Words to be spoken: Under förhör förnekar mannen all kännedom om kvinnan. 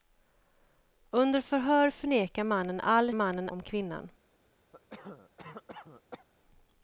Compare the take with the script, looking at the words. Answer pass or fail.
fail